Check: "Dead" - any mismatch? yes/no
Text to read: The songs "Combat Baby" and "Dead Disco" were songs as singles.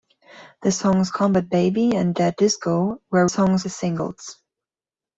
no